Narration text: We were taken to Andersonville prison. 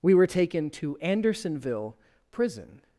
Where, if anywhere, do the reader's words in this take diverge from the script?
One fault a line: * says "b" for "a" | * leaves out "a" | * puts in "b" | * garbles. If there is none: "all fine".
all fine